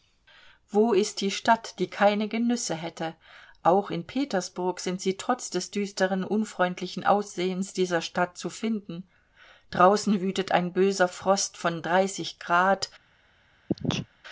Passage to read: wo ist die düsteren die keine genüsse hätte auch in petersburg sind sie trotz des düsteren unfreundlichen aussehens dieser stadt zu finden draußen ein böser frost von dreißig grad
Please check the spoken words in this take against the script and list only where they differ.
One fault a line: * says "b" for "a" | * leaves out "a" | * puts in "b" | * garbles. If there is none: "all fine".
* says "stadt" for "düsteren"
* puts in "wütet"